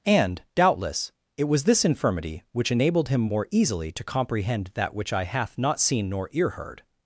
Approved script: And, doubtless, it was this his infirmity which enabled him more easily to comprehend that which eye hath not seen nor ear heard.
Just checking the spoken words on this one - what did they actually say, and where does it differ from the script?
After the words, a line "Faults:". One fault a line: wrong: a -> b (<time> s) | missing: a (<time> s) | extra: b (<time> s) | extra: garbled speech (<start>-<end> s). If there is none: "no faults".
And, doubtless, it was this infirmity which enabled him more easily to comprehend that which eye hath not seen nor ear heard.
Faults:
missing: his (1.9 s)